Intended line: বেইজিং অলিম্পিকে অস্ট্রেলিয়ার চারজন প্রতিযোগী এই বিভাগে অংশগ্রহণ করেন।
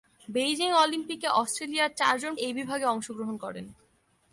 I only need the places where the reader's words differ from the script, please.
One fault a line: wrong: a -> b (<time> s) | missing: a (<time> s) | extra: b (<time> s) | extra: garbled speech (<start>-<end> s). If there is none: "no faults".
missing: প্রতিযোগী (2.3 s)